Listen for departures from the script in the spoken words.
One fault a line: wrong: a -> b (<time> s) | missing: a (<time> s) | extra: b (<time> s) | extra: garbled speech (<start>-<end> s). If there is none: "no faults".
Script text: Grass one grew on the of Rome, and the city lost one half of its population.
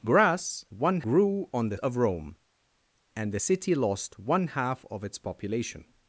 no faults